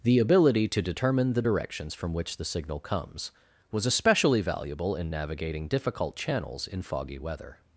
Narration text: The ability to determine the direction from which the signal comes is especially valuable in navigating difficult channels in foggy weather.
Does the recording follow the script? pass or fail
fail